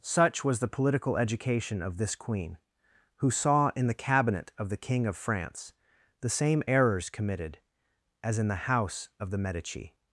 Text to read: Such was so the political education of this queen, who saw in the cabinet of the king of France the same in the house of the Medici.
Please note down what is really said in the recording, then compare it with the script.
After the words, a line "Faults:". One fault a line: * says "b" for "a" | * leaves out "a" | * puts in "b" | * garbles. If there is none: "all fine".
Such was the political education of this queen, who saw in the cabinet of the king of France the same errors committed as in the house of the Medici.
Faults:
* leaves out "so"
* puts in "errors committed as"